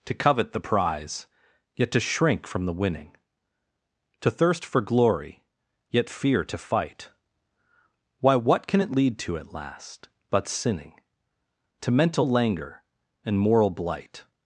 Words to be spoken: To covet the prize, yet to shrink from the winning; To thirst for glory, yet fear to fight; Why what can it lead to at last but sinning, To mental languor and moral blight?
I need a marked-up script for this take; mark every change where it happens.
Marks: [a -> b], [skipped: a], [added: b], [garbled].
To covet the prize, yet to shrink from the winning; To thirst for glory, yet fear to fight; Why what can it lead to at last but sinning, To mental languor and moral blight?